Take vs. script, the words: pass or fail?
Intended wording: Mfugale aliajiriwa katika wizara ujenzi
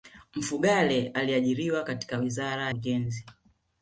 pass